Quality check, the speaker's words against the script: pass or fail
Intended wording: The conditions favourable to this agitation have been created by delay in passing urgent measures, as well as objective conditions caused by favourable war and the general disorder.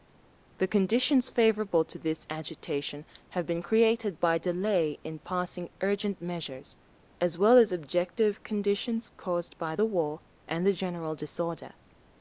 fail